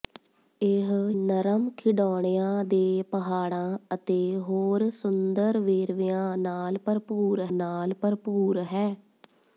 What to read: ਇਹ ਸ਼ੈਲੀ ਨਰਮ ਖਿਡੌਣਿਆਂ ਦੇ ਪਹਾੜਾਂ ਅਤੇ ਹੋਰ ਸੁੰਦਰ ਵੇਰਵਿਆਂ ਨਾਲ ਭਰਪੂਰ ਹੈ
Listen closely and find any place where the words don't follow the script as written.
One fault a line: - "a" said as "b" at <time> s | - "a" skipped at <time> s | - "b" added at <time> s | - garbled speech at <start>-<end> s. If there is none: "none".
- "ਸ਼ੈਲੀ" skipped at 0.9 s
- "ਨਾਲ ਭਰਪੂਰ" added at 7.5 s